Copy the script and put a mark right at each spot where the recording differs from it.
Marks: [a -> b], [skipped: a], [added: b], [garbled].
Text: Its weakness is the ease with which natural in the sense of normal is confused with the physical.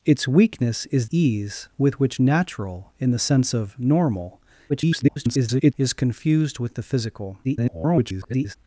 Its weakness is [skipped: the] ease with which natural in the sense of normal [garbled] is confused with the physical. [garbled]